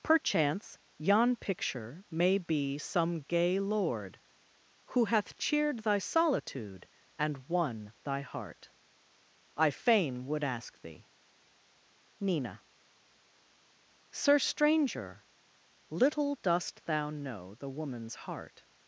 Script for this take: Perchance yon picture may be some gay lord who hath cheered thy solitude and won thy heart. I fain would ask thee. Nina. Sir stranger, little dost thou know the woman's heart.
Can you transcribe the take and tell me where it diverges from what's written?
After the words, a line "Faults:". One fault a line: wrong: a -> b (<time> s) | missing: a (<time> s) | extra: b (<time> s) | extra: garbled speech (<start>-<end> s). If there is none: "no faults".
Perchance yon picture may be some gay lord who hath cheered thy solitude and won thy heart. I fain would ask thee. Nina. Sir stranger, little dost thou know the woman's heart.
Faults:
no faults